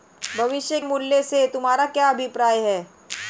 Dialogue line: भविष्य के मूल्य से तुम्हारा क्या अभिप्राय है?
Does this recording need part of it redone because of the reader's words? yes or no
yes